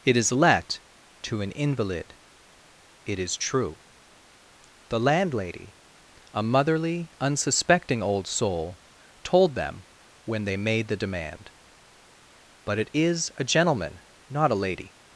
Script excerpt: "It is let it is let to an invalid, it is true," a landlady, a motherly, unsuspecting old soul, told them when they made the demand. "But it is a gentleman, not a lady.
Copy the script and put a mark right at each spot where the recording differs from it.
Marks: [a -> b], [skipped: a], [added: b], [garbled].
"It is let [skipped: it is let] to an invalid, it is true," [a -> the] landlady, a motherly, unsuspecting old soul, told them when they made the demand. "But it is a gentleman, not a lady.